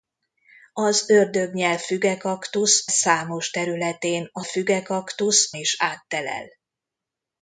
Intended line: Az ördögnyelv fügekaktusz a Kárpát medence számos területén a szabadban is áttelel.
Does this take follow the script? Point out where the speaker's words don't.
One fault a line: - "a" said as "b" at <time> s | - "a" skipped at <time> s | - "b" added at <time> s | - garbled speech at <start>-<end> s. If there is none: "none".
- "a Kárpát medence" skipped at 2.9 s
- "szabadban" said as "fügekaktusz" at 4.4 s